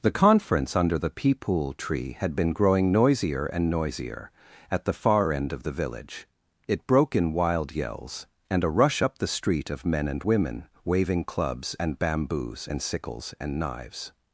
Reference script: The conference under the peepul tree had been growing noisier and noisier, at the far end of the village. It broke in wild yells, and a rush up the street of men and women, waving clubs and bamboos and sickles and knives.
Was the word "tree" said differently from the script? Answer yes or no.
no